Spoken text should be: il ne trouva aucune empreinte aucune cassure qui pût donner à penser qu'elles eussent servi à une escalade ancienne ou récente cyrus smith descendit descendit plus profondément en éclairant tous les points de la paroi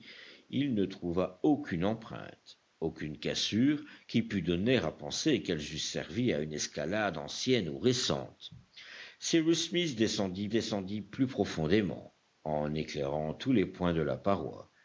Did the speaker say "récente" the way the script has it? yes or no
yes